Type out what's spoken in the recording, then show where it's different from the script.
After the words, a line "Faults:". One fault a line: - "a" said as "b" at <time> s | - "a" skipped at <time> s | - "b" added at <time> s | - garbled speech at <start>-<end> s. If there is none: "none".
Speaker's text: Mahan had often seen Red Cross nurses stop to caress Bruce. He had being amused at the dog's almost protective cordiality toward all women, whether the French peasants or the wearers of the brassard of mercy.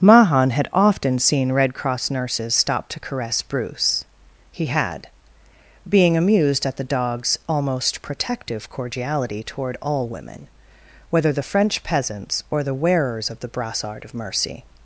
Mahan had often seen Red Cross nurses stop to caress Bruce. He had being amused at the dog's almost protective cordiality toward all women, whether the French peasants or the wearers of the brassard of mercy.
Faults:
none